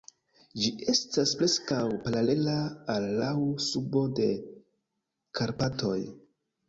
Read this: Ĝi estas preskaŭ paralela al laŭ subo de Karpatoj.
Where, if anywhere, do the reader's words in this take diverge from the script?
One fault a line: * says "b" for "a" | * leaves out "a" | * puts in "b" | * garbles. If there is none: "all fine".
all fine